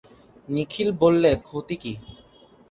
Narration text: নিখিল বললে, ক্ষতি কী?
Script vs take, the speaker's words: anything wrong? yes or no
no